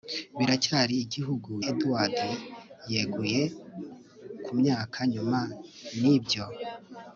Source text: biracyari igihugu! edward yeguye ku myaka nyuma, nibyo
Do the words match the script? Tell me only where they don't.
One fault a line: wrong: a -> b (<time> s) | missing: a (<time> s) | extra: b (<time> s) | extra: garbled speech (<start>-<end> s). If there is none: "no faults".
no faults